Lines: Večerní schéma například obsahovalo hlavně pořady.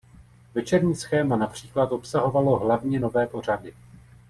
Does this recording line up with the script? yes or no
no